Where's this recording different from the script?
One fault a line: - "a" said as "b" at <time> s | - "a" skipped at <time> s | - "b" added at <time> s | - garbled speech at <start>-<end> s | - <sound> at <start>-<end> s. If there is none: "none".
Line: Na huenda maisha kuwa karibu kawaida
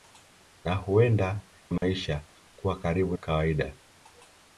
- dropout at 1.8-1.8 s